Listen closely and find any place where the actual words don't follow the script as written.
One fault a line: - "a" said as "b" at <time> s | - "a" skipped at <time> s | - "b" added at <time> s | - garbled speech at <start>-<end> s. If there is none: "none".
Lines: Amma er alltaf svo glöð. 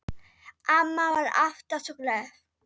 - "er" said as "var" at 1.1 s